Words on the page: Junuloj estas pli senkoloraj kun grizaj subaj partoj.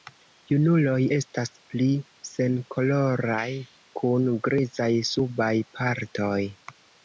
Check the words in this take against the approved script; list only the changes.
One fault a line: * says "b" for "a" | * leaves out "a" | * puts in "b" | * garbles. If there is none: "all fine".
all fine